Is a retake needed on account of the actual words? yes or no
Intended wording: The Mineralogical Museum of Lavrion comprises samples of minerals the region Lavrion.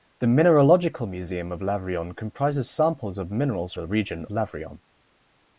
no